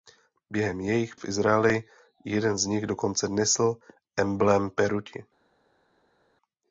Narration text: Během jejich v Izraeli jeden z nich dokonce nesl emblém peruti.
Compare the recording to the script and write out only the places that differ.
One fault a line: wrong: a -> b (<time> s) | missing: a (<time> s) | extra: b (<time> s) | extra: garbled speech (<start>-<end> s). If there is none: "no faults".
no faults